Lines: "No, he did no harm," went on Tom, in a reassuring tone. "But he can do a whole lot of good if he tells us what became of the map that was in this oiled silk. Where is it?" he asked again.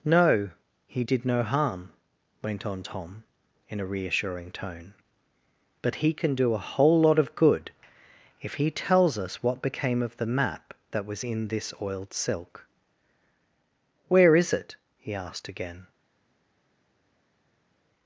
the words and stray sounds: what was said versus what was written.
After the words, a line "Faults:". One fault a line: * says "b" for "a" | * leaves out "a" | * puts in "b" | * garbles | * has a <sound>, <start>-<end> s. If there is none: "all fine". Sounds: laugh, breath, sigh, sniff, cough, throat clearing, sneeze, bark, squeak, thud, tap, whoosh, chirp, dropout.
"No, he did no harm," went on Tom, in a reassuring tone. "But he can do a whole lot of good if he tells us what became of the map that was in this oiled silk. Where is it?" he asked again.
Faults:
all fine